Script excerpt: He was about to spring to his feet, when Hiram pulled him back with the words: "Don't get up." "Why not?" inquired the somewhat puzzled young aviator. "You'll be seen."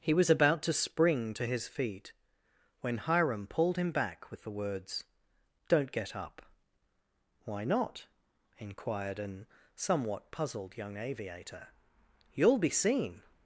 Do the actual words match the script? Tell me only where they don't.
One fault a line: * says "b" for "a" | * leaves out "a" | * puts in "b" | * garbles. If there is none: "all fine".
* says "an" for "the"